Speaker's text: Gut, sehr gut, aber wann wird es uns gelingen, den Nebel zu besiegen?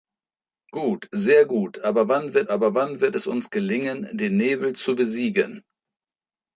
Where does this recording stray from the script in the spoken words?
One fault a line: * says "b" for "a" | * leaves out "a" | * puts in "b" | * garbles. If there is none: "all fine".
* puts in "aber wann wird"